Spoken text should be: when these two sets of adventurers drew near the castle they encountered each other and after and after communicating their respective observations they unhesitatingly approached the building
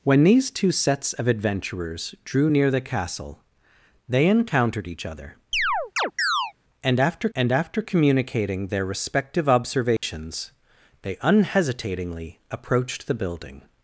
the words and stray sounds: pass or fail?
fail